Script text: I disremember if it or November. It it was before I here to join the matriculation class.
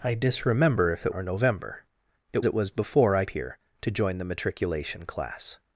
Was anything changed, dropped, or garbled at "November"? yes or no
no